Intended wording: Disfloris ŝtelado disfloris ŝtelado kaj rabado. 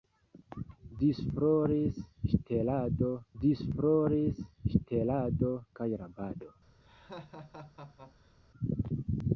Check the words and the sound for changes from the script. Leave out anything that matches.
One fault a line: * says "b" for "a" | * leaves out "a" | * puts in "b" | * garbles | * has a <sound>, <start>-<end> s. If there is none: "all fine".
* has a laugh, 6.8-8.3 s